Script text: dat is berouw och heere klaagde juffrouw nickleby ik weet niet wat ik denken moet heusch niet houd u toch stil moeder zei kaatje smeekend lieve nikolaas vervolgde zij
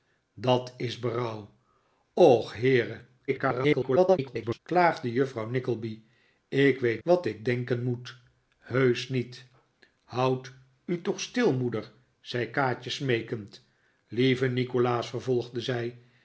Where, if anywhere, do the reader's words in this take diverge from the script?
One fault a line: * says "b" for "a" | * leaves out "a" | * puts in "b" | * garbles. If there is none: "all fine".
* garbles
* leaves out "niet"